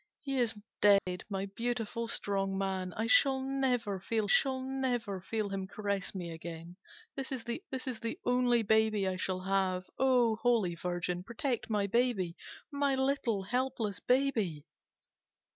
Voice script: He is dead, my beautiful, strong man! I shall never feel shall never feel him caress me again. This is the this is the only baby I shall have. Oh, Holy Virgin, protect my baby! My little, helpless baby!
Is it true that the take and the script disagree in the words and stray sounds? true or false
true